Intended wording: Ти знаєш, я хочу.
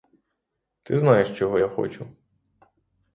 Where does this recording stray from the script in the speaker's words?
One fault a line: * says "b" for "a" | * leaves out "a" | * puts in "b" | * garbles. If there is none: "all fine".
* puts in "чого"